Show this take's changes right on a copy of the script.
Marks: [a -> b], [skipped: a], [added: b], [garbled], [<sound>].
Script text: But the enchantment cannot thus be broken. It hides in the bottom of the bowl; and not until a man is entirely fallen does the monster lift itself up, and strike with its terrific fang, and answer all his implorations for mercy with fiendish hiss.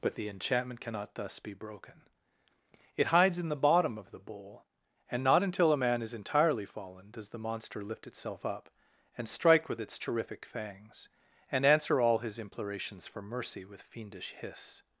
But the enchantment cannot thus be broken. It hides in the bottom of the bowl; and not until a man is entirely fallen does the monster lift itself up, and strike with its terrific [fang, -> fangs] and answer all his implorations for mercy with fiendish hiss.